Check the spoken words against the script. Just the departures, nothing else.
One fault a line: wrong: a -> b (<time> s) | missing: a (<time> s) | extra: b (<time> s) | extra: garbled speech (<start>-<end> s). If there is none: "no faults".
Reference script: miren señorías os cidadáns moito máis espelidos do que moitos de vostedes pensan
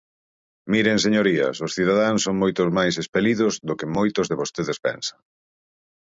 extra: son (2.2 s)